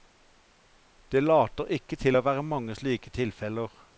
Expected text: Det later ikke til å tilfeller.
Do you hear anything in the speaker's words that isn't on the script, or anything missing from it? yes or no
yes